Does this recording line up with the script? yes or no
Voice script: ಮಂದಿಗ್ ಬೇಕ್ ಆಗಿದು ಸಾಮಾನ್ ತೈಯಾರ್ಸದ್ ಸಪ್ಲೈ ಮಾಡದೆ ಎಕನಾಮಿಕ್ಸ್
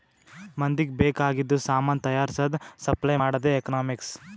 yes